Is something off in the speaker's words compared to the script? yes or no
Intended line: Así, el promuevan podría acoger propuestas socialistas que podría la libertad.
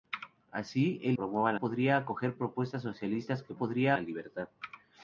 no